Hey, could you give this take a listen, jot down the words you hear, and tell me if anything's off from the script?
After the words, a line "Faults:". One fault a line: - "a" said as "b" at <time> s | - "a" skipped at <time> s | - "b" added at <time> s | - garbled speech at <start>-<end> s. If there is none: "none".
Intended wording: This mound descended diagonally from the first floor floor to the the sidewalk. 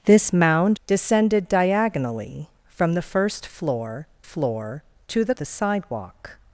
This mound descended diagonally from the first floor floor to the the sidewalk.
Faults:
none